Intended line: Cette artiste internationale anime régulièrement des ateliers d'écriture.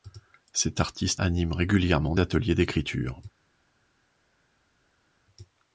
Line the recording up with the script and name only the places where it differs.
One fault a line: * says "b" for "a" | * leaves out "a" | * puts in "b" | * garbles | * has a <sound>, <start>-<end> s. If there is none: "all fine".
* leaves out "internationale"
* leaves out "des"